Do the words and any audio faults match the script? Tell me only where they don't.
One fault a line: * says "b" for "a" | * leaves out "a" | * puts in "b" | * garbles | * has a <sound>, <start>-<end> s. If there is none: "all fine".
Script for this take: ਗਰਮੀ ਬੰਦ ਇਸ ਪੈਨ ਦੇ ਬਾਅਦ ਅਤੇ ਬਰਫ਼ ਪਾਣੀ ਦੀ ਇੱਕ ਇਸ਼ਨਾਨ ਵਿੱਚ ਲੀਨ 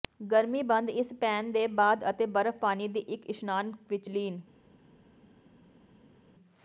all fine